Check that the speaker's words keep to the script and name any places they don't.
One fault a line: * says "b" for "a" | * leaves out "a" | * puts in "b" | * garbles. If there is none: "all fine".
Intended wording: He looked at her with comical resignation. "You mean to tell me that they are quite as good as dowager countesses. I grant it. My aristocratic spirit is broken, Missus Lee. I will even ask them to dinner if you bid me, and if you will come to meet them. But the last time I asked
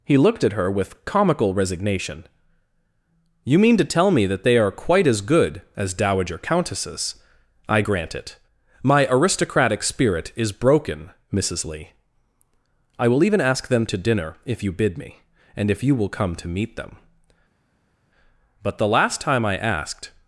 all fine